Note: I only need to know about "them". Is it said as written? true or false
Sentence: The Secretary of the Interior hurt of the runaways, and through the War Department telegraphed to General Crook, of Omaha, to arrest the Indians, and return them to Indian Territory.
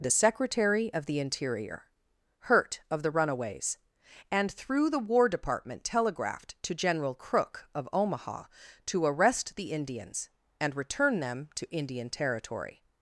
true